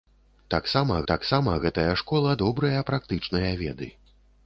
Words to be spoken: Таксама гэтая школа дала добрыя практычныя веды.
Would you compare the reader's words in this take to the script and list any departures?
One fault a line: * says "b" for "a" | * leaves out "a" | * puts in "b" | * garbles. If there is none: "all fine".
* puts in "таксама"
* leaves out "дала"